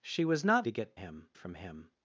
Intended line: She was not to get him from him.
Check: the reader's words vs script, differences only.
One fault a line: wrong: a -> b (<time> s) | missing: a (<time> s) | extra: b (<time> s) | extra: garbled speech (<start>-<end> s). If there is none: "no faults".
no faults